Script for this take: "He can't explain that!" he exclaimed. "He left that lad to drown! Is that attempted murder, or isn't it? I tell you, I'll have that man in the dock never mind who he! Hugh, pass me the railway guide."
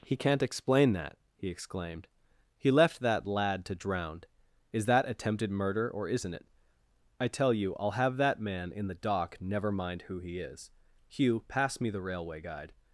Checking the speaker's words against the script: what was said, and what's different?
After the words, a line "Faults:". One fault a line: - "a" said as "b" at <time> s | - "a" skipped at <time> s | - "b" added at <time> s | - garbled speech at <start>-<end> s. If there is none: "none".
"He can't explain that!" he exclaimed. "He left that lad to drown! Is that attempted murder, or isn't it? I tell you, I'll have that man in the dock never mind who he is! Hugh, pass me the railway guide."
Faults:
- "is" added at 10.4 s